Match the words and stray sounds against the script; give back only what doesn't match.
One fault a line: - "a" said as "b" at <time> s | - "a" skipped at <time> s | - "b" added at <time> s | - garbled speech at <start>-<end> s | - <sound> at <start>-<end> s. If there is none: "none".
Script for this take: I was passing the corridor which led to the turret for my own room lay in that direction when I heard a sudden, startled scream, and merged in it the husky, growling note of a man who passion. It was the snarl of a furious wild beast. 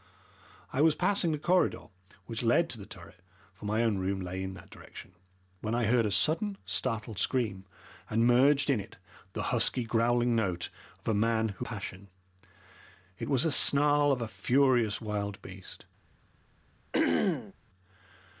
- throat clearing at 16.9-17.5 s